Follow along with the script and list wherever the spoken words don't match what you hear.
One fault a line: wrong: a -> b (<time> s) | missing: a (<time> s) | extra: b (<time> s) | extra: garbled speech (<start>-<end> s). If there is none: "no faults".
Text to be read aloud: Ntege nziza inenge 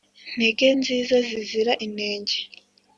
extra: zizira (1.3 s)